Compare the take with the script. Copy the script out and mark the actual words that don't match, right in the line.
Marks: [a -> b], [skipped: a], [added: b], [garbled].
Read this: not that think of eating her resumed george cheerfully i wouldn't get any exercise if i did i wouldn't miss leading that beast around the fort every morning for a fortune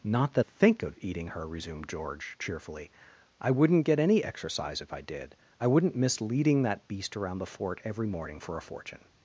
not that think of eating her resumed george cheerfully i wouldn't get any exercise if i did i wouldn't miss leading that beast around the fort every morning for a fortune